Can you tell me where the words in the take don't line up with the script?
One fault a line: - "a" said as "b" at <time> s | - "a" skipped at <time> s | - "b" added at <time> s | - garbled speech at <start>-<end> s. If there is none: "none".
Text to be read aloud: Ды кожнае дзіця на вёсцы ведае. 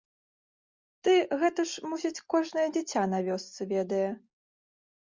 - "гэта ж мусіць" added at 1.4 s